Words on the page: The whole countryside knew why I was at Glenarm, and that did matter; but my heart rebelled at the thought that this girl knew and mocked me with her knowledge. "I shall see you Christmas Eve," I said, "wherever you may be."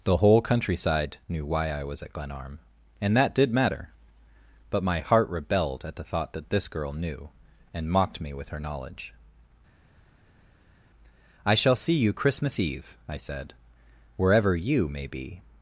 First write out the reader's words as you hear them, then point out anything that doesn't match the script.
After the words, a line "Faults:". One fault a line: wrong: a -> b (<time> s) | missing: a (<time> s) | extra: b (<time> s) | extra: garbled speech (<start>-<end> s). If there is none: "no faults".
The whole countryside knew why I was at Glenarm, and that did matter; but my heart rebelled at the thought that this girl knew and mocked me with her knowledge. "I shall see you Christmas Eve," I said, "wherever you may be."
Faults:
no faults